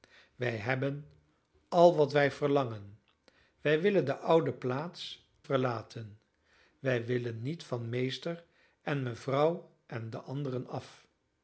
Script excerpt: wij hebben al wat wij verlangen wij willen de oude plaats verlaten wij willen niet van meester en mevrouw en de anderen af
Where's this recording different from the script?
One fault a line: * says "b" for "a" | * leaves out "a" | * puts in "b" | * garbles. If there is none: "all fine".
all fine